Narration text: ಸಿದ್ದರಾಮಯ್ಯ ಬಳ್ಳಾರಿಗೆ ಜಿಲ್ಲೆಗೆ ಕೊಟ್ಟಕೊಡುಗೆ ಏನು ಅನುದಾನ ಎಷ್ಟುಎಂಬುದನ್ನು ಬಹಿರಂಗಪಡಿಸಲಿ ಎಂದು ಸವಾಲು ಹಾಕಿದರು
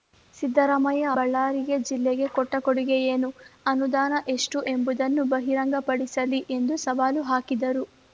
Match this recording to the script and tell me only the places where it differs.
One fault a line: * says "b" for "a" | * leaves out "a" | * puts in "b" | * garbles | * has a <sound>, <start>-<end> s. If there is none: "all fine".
all fine